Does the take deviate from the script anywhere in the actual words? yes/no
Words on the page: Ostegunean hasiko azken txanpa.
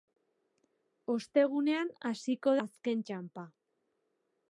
no